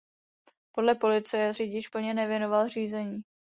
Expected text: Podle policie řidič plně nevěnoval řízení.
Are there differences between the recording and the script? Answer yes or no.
no